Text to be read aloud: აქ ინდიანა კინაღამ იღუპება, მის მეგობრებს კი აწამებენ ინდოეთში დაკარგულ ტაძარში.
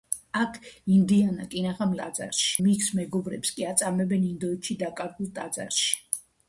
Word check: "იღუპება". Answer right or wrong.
wrong